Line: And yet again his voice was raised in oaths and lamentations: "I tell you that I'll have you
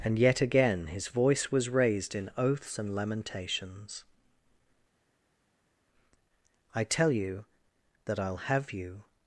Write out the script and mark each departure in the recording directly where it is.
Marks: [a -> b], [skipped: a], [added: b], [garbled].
And yet again his voice was raised in oaths and lamentations: "I tell you that I'll have you